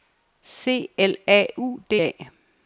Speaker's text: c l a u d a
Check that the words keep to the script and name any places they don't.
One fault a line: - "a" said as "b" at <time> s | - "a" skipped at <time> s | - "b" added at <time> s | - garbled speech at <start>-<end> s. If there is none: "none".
none